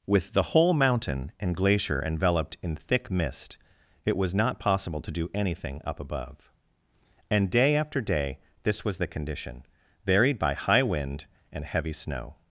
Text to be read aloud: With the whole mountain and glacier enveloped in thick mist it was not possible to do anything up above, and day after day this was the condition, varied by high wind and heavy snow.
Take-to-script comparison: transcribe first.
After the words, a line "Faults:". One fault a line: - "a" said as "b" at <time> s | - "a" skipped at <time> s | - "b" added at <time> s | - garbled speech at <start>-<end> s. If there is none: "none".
With the whole mountain and glacier enveloped in thick mist it was not possible to do anything up above, and day after day this was the condition, varied by high wind and heavy snow.
Faults:
none